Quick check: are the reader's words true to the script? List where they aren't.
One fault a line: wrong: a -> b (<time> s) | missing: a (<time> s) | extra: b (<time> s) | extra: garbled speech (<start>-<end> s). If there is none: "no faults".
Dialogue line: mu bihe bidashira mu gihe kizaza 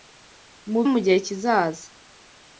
missing: bihe bidashira (0.8 s)